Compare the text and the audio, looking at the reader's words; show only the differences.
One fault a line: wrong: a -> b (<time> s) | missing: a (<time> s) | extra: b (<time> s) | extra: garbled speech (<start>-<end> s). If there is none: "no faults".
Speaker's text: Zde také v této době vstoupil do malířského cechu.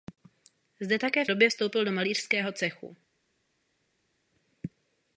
missing: této (1.3 s)